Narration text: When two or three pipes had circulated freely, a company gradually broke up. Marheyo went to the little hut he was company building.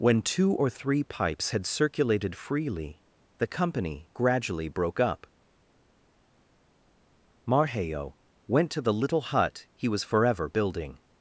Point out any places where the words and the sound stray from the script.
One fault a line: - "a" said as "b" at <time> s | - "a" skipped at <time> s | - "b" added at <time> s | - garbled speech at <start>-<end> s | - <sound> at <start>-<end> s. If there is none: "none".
- "a" said as "the" at 3.4 s
- "company" said as "forever" at 10.0 s